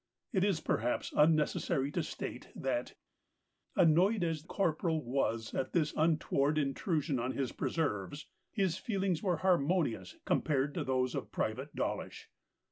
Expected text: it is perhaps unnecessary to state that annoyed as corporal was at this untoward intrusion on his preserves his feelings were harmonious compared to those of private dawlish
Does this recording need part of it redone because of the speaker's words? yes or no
no